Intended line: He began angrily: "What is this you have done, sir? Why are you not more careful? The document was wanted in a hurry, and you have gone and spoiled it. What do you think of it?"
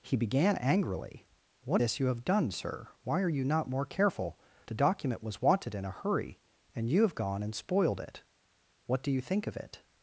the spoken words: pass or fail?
fail